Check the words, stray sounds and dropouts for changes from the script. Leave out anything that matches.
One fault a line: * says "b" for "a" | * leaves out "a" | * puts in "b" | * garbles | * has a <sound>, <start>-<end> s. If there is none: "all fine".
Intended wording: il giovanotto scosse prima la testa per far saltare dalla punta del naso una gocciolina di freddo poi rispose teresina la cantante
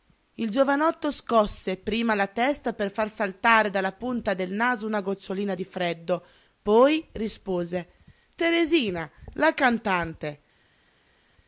all fine